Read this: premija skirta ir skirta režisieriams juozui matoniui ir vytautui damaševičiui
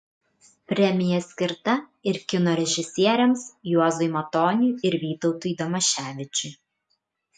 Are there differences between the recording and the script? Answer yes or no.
yes